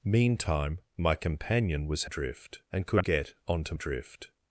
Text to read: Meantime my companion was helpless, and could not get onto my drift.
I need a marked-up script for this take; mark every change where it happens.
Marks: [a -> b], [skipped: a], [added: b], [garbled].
Meantime my companion was [helpless, -> drift] and could [skipped: not] get onto [skipped: my] drift.